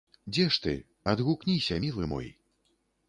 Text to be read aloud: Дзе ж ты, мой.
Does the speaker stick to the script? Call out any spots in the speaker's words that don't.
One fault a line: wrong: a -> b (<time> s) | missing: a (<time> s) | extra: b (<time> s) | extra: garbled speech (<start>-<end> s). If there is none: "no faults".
extra: адгукніся мілы (1.1 s)